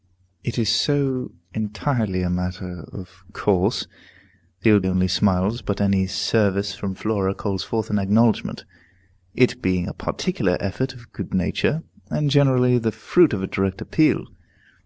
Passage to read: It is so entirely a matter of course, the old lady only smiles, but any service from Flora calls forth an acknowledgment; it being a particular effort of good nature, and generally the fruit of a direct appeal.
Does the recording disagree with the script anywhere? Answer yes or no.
yes